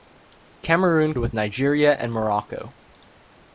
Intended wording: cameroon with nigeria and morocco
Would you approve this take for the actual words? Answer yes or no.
yes